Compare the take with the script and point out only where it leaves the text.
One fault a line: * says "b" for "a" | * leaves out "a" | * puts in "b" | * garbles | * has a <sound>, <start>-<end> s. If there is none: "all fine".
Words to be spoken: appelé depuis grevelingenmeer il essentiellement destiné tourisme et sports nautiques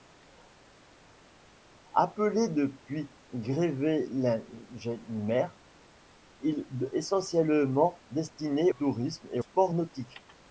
all fine